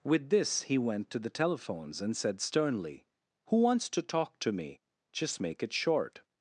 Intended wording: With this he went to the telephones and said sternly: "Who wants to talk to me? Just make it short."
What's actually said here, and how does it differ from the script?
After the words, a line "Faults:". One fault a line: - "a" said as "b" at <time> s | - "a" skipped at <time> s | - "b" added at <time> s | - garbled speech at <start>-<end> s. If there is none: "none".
With this he went to the telephones and said sternly: "Who wants to talk to me? Just make it short."
Faults:
none